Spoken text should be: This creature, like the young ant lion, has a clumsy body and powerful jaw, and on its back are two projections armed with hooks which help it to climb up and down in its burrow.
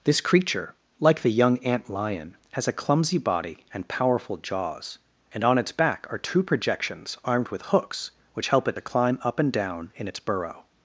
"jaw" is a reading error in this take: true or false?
true